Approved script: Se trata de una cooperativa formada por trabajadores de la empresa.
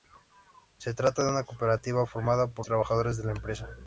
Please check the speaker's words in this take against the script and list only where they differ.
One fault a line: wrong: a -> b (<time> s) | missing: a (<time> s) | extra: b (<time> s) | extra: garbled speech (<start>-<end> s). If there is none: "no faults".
no faults